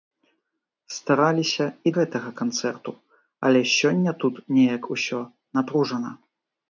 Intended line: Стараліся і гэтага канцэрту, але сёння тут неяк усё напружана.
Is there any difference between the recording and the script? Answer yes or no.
no